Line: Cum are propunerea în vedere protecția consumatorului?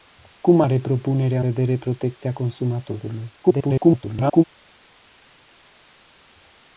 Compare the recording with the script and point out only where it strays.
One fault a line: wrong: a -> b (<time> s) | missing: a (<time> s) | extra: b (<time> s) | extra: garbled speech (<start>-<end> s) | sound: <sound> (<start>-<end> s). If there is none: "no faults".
missing: în (1.4 s)
extra: garbled speech (3.4-4.4 s)